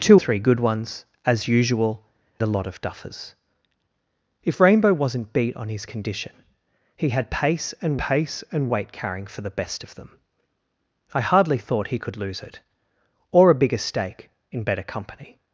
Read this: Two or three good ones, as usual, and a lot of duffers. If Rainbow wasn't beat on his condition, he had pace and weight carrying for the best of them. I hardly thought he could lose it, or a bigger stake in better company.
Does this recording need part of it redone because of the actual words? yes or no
yes